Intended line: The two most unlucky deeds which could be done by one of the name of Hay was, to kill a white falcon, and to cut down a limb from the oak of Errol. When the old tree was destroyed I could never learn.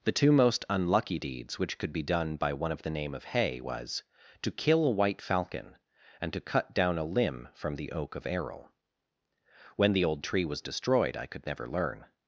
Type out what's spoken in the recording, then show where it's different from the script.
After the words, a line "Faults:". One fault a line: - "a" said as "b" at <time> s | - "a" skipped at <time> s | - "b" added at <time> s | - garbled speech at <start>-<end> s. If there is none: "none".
The two most unlucky deeds which could be done by one of the name of Hay was, to kill a white falcon, and to cut down a limb from the oak of Errol. When the old tree was destroyed I could never learn.
Faults:
none